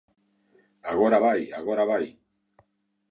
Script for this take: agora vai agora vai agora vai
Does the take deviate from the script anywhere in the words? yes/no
yes